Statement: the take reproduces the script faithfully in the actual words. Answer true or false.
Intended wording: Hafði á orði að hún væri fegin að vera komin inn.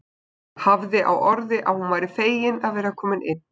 true